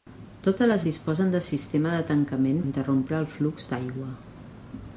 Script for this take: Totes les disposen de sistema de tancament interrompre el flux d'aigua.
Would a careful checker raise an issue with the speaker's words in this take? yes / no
no